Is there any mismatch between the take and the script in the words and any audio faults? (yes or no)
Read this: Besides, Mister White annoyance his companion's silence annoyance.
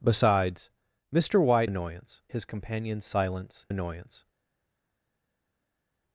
no